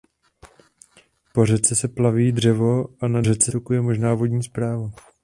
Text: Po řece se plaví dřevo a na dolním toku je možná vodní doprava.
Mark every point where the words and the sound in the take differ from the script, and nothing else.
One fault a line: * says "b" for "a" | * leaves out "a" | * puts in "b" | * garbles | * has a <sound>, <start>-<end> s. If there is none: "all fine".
* says "řece" for "dolním"